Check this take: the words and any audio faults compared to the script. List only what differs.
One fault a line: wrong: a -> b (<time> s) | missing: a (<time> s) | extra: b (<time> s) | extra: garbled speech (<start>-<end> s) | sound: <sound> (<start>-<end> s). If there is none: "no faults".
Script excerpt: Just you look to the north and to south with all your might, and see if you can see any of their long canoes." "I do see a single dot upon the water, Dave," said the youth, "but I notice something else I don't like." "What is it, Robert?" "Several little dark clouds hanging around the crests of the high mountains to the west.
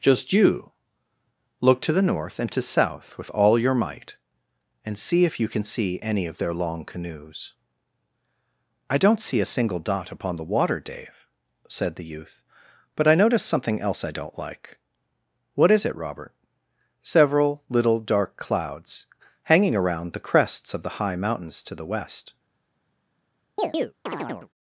wrong: do -> don't (9.0 s)
sound: chirp (23.6-24.5 s)